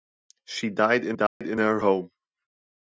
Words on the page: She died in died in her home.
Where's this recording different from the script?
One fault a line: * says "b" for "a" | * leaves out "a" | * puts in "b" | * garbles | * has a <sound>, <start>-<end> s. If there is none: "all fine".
* has a dropout, 1.3-1.4 s